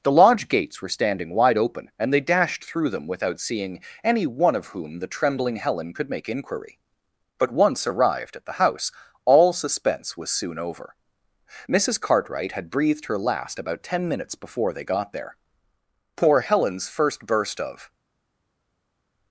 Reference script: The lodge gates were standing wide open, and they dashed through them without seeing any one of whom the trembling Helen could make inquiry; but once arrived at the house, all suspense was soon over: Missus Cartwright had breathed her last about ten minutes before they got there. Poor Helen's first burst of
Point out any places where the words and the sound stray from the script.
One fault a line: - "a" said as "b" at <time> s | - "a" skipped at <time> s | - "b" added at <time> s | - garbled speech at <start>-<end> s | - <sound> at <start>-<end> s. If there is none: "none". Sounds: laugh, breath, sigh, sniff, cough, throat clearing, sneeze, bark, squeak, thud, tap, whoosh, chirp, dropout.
none